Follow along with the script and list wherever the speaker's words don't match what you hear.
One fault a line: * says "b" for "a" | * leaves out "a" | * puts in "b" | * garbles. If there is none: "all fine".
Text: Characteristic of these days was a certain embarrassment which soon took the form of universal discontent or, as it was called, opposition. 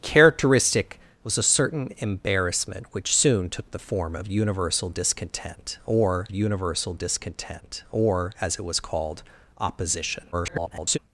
* leaves out "of these days"
* puts in "universal discontent or"
* garbles